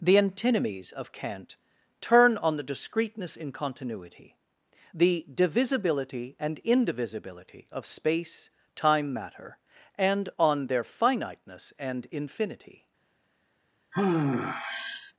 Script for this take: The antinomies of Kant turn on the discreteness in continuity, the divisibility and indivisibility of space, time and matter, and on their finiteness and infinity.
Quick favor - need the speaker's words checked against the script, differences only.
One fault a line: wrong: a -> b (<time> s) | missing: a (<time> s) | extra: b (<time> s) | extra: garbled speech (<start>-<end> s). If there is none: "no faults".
missing: and (9.1 s)